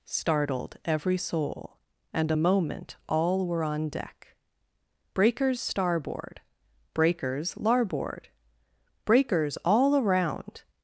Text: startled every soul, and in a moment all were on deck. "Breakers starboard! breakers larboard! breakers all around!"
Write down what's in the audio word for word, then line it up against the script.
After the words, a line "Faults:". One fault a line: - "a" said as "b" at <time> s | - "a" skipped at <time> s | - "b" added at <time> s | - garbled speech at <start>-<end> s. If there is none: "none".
startled every soul, and a moment all were on deck. "Breakers starboard! breakers larboard! breakers all around!"
Faults:
- "in" skipped at 2.3 s